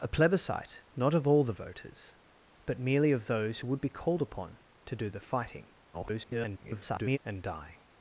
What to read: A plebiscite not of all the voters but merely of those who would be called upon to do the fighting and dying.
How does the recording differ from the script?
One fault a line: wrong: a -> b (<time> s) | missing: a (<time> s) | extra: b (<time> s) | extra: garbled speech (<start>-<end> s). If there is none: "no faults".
extra: garbled speech (5.9-7.2 s)